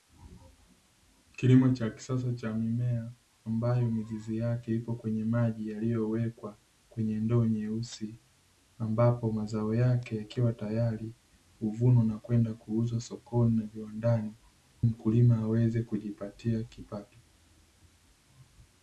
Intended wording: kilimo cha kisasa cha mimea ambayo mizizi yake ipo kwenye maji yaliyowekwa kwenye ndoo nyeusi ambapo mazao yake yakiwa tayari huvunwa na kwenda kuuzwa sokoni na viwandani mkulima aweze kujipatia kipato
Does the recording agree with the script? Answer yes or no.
yes